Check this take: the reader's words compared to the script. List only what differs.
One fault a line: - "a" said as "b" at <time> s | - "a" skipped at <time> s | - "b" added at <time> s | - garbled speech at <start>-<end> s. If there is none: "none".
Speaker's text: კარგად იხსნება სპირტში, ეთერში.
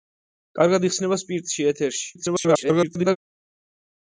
- garbled speech at 2.1-3.2 s